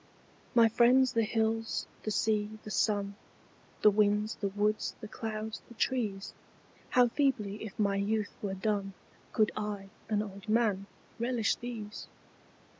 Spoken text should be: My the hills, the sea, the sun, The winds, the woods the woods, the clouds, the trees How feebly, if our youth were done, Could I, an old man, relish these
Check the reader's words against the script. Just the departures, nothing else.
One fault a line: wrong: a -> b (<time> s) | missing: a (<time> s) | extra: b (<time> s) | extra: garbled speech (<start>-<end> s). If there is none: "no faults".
extra: friends (0.7 s)
missing: woods the (5.1 s)
wrong: our -> my (7.8 s)